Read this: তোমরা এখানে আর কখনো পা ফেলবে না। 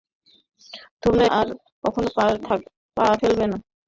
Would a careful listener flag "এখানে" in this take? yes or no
yes